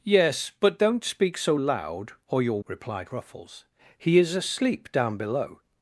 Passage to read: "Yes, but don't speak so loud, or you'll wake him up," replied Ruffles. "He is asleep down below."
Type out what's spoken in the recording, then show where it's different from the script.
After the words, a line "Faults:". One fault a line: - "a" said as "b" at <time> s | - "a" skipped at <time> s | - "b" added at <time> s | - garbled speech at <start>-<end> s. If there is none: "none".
"Yes, but don't speak so loud, or you'll," replied Ruffles. "He is asleep down below."
Faults:
- "wake him up" skipped at 2.6 s